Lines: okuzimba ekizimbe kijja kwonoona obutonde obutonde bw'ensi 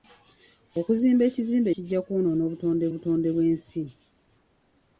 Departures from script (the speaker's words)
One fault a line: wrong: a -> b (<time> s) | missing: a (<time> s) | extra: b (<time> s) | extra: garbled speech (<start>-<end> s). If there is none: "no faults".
no faults